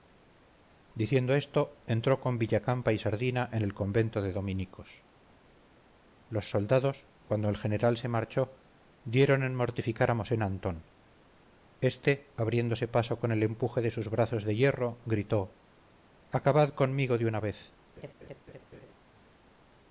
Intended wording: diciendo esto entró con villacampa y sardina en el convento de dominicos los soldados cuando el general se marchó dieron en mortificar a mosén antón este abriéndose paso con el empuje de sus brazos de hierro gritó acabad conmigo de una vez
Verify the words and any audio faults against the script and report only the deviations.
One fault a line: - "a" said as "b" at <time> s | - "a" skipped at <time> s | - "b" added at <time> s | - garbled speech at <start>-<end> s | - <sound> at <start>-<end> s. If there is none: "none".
- laugh at 18.0-18.9 s